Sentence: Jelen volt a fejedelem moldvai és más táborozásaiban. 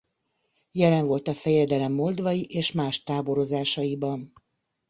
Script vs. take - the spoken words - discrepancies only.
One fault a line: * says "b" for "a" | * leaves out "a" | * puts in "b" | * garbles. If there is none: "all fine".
all fine